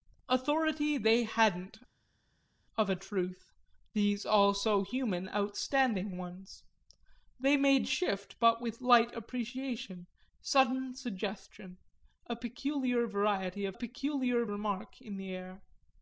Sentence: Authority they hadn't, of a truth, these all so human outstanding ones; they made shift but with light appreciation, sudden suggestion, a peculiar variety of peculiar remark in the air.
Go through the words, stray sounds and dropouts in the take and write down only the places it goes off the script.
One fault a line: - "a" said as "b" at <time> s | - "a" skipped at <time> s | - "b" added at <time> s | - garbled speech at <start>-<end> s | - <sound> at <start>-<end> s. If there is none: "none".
none